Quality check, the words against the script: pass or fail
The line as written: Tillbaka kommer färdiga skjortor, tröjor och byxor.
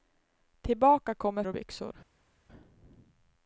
fail